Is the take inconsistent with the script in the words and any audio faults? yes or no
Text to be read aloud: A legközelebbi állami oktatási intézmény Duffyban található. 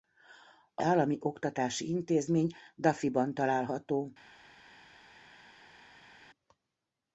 yes